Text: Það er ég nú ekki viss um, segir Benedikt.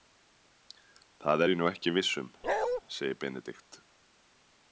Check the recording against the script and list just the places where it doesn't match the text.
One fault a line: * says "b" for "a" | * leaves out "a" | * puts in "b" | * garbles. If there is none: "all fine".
all fine